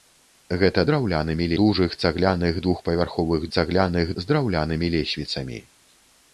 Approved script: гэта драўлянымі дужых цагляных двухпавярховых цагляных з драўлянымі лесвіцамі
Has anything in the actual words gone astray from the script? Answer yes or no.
no